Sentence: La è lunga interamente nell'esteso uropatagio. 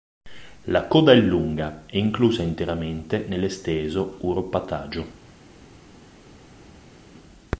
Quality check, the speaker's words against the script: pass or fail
fail